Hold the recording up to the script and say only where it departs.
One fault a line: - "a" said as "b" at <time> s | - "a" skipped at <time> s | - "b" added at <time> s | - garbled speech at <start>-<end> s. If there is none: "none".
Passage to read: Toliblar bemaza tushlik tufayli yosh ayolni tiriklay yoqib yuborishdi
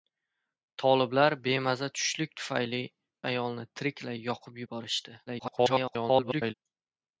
- "yosh" skipped at 2.8 s
- garbled speech at 5.3-6.5 s